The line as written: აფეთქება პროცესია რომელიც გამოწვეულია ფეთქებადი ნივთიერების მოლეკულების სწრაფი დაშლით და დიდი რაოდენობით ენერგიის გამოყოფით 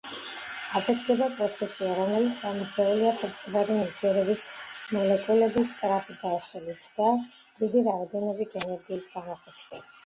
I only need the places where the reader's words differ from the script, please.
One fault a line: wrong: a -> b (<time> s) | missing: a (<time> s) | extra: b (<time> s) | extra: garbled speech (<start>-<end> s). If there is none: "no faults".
no faults